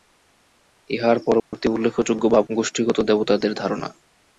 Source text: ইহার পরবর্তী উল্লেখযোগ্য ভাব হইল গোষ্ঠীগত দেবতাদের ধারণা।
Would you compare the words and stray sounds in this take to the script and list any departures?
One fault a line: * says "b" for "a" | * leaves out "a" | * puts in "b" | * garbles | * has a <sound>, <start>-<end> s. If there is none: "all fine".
* has a dropout, 1.4-1.5 s
* leaves out "হইল"